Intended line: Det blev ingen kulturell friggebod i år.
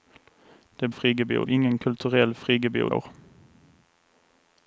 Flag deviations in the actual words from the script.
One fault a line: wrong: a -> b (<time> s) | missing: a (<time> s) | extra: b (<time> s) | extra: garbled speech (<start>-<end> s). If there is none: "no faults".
wrong: blev -> friggebod (0.9 s)
missing: i (2.9 s)